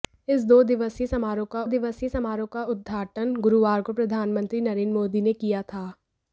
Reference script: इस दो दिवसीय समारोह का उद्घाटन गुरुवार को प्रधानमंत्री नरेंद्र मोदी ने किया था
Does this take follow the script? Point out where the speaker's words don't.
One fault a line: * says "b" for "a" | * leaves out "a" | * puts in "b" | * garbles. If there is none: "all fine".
* puts in "दिवसीय समारोह का"